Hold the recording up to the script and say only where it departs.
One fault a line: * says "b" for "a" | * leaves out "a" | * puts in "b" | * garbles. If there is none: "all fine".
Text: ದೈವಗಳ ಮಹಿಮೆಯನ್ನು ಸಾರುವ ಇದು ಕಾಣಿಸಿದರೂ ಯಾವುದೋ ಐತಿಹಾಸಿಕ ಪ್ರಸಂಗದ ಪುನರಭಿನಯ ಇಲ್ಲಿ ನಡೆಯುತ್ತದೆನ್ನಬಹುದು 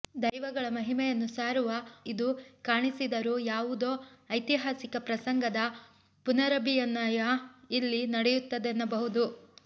all fine